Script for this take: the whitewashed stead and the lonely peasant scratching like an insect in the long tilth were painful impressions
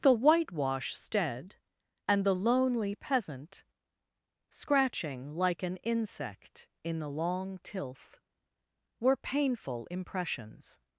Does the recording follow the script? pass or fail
fail